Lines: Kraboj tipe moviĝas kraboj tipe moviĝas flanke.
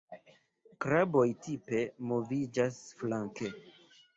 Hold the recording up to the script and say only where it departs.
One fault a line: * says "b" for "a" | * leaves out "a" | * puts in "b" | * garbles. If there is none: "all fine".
* leaves out "kraboj tipe moviĝas"